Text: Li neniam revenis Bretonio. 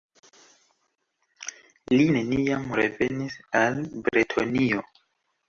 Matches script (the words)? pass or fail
fail